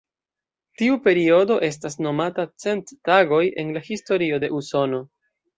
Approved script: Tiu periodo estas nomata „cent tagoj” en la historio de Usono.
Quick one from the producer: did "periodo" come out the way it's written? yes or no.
yes